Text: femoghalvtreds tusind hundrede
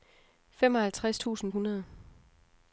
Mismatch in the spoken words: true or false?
false